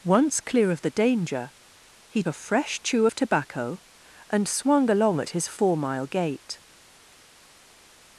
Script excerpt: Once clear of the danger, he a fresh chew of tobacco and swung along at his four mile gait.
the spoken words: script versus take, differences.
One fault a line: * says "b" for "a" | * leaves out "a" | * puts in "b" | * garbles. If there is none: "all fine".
all fine